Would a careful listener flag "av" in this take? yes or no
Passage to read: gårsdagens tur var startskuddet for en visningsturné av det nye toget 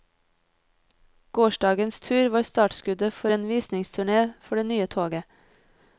yes